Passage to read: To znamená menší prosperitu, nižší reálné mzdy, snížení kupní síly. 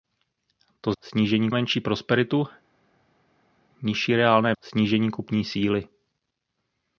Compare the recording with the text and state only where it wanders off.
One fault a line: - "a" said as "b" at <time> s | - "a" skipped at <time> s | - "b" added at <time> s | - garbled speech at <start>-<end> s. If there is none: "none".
- "znamená" said as "snížení" at 1.0 s
- "mzdy" skipped at 4.5 s